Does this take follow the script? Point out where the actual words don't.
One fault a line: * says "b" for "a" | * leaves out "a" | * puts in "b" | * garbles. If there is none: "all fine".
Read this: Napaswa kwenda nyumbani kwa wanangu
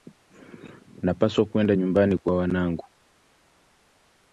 all fine